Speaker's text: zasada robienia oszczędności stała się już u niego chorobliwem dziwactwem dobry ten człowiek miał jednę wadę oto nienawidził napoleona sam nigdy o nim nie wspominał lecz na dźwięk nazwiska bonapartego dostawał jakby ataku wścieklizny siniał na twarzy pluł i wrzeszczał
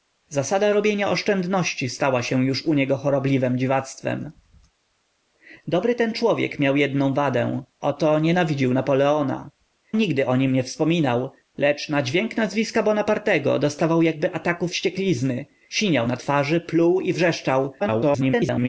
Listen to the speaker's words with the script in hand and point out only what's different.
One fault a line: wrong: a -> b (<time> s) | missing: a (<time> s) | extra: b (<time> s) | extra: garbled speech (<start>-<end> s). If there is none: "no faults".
missing: sam (9.5 s)
extra: garbled speech (17.8-18.7 s)